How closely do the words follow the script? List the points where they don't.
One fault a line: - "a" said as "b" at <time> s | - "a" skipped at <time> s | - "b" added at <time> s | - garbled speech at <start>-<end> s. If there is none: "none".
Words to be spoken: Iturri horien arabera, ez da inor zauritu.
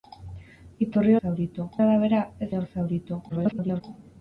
- "horien" said as "zauritu" at 1.2 s
- "da" skipped at 2.5 s
- garbled speech at 3.3-3.8 s